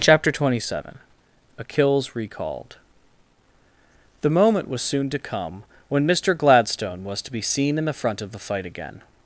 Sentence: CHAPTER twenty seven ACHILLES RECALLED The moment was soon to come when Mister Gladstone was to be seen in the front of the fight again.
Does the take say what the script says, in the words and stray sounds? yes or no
yes